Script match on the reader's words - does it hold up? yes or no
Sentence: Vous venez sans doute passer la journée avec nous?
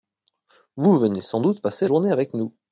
no